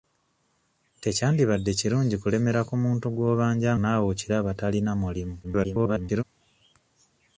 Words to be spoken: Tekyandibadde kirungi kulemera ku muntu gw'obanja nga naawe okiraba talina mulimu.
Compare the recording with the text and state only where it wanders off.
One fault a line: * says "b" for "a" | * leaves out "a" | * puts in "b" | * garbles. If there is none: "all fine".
* leaves out "nga"
* garbles